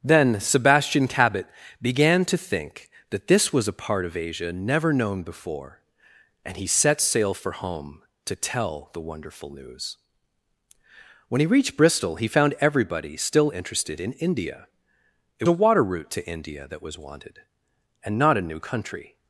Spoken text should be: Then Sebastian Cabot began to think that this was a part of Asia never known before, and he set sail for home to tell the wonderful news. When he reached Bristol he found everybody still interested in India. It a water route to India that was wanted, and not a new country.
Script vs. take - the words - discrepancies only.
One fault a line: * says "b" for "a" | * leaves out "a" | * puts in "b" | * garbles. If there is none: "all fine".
all fine